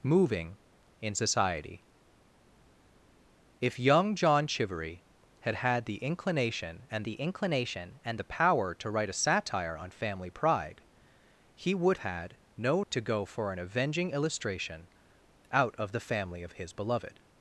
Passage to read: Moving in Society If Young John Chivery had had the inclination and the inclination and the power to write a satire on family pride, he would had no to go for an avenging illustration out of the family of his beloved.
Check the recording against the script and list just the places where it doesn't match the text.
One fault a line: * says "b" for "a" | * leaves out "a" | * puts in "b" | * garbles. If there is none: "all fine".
all fine